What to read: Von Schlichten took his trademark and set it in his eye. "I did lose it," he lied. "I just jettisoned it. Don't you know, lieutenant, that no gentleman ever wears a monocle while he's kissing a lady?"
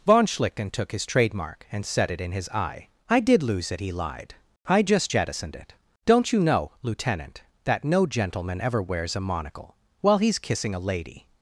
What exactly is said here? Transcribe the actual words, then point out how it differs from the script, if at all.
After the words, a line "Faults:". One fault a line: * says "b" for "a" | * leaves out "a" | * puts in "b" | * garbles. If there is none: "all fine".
Von Schlichten took his trademark and set it in his eye. "I did lose it," he lied. "I just jettisoned it. Don't you know, lieutenant, that no gentleman ever wears a monocle while he's kissing a lady?"
Faults:
all fine